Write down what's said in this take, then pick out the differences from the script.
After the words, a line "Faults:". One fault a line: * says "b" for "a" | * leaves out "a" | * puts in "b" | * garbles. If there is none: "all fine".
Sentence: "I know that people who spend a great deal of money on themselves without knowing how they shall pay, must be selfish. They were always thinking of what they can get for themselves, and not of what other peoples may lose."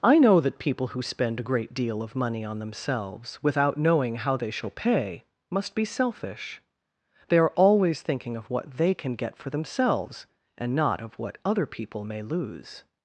"I know that people who spend a great deal of money on themselves without knowing how they shall pay, must be selfish. They are always thinking of what they can get for themselves, and not of what other people may lose."
Faults:
* says "are" for "were"
* says "people" for "peoples"